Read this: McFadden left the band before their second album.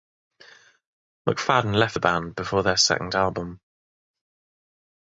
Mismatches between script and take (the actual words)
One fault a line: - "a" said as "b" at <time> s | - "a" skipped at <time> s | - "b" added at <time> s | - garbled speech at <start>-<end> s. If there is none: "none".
none